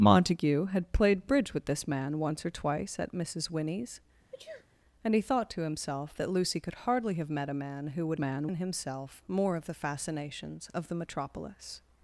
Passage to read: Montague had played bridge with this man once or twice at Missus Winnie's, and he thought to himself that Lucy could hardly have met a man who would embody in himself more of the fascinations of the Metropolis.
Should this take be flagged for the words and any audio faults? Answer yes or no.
yes